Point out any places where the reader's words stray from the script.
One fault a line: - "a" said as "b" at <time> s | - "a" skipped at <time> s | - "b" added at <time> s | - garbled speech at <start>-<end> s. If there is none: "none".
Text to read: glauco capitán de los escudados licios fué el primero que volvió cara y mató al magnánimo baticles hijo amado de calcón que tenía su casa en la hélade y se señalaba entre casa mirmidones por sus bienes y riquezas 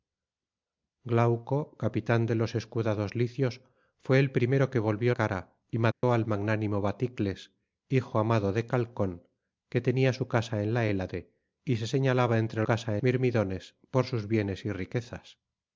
none